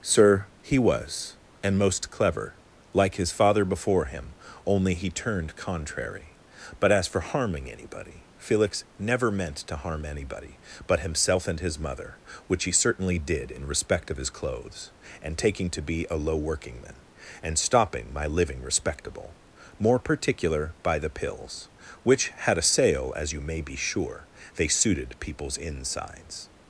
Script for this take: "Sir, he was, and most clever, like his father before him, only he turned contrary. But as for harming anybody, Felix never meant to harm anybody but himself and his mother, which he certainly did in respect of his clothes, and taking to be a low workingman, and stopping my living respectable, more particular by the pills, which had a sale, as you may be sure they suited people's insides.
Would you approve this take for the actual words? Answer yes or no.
yes